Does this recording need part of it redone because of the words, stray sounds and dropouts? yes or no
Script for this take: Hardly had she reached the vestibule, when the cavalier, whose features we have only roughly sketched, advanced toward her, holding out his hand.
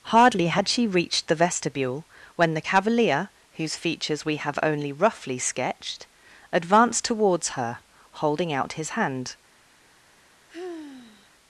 yes